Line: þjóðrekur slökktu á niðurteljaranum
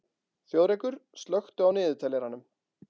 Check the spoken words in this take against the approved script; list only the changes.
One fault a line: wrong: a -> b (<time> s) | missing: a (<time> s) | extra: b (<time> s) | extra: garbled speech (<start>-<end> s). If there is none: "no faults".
no faults